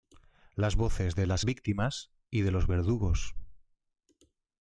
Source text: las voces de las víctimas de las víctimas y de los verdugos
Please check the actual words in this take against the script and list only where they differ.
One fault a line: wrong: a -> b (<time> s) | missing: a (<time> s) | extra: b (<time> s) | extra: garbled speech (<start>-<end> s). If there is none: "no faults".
missing: de las víctimas (2.1 s)